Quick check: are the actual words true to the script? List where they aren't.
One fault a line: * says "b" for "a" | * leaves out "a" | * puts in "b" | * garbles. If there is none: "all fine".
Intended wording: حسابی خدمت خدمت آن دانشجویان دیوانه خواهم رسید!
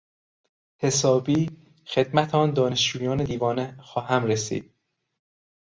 * leaves out "خدمت"